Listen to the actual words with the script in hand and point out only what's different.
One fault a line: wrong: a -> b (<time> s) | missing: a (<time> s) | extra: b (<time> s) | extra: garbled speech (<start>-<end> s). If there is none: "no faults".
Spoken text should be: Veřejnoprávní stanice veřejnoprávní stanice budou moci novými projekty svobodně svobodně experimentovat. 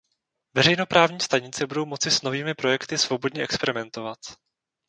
missing: veřejnoprávní stanice (1.7 s)
extra: s (2.1 s)
missing: svobodně (3.4 s)